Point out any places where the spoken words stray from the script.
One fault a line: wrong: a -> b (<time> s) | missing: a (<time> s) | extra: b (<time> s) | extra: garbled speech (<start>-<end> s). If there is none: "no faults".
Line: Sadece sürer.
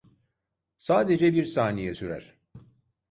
extra: bir saniye (1.3 s)